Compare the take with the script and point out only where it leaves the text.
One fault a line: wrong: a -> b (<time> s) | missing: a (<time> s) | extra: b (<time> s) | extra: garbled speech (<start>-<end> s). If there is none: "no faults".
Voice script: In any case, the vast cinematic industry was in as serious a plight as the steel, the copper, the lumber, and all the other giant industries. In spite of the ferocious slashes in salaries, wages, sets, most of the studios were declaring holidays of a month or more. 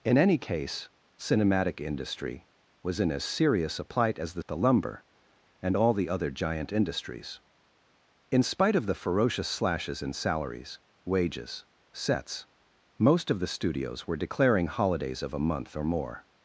missing: the vast (0.9 s)
missing: steel the copper (4.4 s)